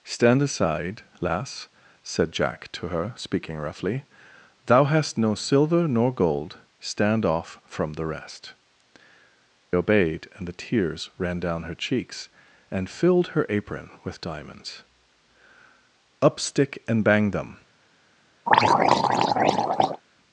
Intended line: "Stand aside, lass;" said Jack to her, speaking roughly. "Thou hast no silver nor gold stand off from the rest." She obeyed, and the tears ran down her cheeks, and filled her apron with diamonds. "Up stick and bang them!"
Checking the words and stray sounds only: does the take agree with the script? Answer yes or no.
no